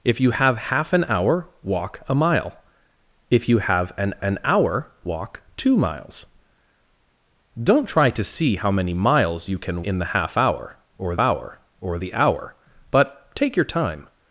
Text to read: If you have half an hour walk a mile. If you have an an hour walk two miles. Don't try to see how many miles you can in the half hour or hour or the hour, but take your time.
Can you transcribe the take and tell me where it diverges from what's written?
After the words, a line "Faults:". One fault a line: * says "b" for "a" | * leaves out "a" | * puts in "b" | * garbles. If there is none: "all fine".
If you have half an hour walk a mile. If you have an an hour walk two miles. Don't try to see how many miles you can in the half hour or hour or the hour, but take your time.
Faults:
all fine